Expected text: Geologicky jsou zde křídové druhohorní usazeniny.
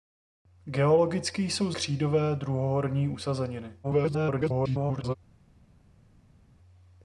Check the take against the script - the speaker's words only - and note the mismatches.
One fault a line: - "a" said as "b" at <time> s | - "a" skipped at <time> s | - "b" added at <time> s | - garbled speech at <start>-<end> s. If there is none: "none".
- "zde" skipped at 1.7 s
- garbled speech at 3.8-5.2 s